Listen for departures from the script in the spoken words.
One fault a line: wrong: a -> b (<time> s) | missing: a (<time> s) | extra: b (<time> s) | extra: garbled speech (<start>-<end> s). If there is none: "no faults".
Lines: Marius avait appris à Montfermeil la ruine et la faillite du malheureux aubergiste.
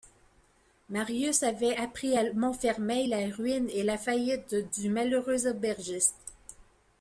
no faults